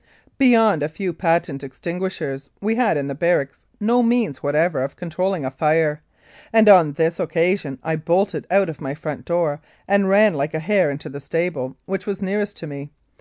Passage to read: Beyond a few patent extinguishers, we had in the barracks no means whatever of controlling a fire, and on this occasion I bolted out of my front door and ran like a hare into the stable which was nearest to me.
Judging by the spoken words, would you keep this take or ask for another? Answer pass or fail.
pass